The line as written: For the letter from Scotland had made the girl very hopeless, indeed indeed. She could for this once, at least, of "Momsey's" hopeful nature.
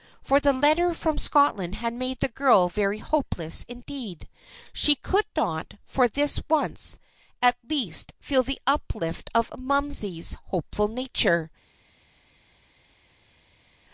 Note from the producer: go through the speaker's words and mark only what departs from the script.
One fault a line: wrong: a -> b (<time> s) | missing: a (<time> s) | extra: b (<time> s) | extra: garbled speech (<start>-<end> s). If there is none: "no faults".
missing: indeed (4.3 s)
extra: not (5.4 s)
extra: feel the uplift (8.2 s)